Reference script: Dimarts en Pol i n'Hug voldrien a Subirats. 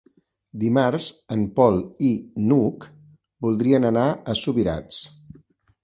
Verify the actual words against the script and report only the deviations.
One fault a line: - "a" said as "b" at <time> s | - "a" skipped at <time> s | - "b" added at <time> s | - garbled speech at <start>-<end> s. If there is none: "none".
- "anar" added at 3.9 s